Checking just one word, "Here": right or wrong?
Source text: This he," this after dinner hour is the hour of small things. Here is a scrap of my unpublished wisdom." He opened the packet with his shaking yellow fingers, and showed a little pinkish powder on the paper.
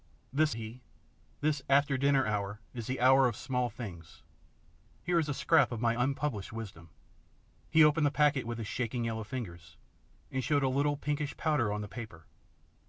right